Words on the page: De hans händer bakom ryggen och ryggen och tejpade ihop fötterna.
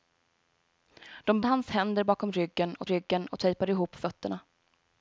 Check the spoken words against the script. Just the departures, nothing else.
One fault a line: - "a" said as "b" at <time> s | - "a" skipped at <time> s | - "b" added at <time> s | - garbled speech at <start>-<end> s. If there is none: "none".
none